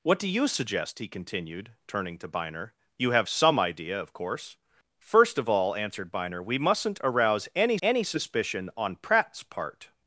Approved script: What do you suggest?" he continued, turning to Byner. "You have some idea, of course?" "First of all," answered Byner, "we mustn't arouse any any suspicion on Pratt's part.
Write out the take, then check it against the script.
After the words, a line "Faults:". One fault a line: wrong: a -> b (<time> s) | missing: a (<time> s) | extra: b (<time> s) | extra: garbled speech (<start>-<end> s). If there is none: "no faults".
What do you suggest?" he continued, turning to Byner. "You have some idea, of course?" "First of all," answered Byner, "we mustn't arouse any any suspicion on Pratt's part.
Faults:
no faults